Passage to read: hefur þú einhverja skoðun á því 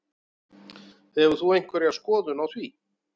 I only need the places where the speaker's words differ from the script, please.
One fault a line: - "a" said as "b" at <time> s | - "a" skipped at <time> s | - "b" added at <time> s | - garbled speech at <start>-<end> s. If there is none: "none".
none